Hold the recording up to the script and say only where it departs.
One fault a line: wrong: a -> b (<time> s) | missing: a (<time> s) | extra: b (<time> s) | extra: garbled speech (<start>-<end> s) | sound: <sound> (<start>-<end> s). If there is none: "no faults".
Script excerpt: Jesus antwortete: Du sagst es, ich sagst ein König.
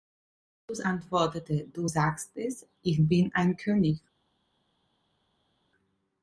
wrong: sagst -> bin (3.1 s)